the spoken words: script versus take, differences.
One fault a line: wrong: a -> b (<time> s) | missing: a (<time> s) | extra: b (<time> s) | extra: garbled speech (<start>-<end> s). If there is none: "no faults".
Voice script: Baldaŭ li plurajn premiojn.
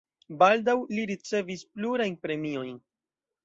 extra: ricevis (1.1 s)